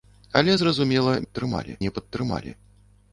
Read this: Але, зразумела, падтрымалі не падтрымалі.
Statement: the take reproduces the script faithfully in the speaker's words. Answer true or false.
true